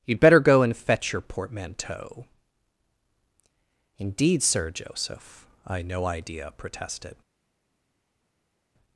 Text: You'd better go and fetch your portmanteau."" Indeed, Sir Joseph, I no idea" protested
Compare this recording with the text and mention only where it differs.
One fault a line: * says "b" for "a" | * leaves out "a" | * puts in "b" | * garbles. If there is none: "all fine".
all fine